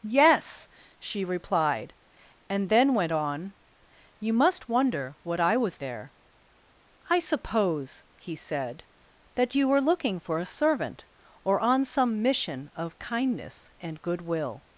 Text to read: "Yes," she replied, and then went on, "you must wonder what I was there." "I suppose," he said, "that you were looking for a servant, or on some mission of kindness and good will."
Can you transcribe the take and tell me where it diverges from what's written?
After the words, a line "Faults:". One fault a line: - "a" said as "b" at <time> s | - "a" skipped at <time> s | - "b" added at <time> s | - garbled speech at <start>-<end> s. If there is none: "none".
"Yes," she replied, and then went on, "you must wonder what I was there." "I suppose," he said, "that you were looking for a servant, or on some mission of kindness and good will."
Faults:
none